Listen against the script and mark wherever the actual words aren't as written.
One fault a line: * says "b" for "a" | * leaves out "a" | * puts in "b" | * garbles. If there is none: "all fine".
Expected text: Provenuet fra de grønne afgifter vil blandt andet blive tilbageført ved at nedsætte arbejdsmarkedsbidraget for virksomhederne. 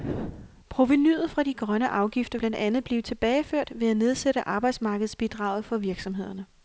* leaves out "vil"